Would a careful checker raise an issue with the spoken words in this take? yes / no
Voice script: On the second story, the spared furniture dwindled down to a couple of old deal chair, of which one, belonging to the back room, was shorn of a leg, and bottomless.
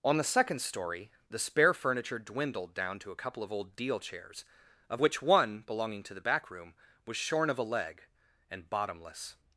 yes